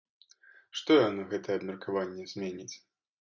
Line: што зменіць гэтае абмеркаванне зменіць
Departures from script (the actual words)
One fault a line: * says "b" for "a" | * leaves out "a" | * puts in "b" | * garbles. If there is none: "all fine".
* says "яно" for "зменіць"